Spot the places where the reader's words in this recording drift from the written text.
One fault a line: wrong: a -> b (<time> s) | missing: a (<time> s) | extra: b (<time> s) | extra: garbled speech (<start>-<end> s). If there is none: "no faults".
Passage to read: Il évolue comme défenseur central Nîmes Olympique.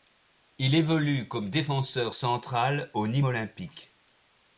extra: au (2.9 s)